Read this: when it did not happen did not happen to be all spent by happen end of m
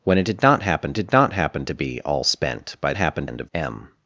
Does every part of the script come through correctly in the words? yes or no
yes